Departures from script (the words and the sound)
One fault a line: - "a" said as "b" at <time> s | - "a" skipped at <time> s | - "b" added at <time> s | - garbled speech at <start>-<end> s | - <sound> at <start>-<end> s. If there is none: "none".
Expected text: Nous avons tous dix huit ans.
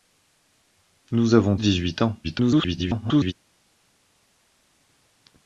- "tous" skipped at 1.6 s
- garbled speech at 2.2-3.3 s